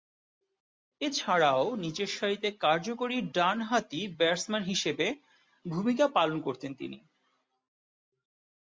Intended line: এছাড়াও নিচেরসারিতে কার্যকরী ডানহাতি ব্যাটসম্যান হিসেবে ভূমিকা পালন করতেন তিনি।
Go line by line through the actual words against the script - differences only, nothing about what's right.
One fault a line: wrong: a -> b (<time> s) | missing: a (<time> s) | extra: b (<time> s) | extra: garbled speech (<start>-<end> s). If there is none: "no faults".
no faults